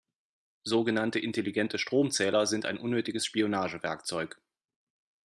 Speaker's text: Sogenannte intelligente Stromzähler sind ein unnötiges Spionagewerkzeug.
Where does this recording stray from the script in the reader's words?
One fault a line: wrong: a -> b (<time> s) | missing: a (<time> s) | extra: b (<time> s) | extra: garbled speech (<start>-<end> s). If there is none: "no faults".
no faults